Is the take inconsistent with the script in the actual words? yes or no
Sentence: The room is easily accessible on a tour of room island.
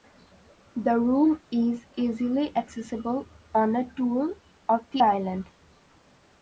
yes